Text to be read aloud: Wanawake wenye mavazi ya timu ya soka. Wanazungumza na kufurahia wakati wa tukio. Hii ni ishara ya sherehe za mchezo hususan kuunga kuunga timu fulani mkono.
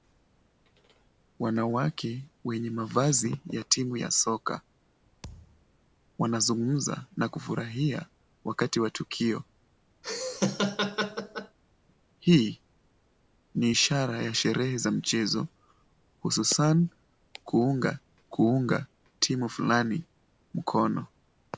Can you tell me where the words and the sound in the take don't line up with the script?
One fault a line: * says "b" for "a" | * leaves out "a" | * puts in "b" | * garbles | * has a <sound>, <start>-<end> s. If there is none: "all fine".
* has a thud, 5.2-5.6 s
* has a laugh, 10.0-11.6 s